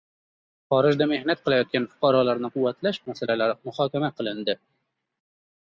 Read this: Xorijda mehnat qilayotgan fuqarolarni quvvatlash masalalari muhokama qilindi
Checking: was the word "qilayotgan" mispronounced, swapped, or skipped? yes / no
no